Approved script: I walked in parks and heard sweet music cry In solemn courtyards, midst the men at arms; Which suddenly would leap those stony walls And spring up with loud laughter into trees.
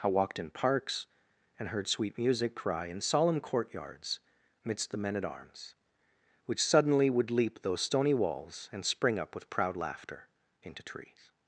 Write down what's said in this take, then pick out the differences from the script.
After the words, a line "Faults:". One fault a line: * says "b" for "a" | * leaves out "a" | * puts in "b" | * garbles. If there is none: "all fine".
I walked in parks and heard sweet music cry In solemn courtyards, midst the men at arms; Which suddenly would leap those stony walls And spring up with proud laughter into trees.
Faults:
* says "proud" for "loud"